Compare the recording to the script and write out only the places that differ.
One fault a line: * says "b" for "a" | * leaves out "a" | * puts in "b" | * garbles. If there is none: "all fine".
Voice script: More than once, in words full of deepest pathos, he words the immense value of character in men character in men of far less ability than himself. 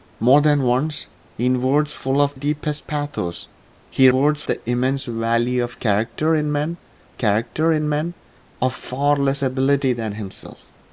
all fine